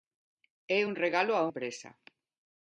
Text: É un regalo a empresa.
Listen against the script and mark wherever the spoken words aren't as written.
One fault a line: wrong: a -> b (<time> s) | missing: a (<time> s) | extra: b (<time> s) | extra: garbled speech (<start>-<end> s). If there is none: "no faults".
no faults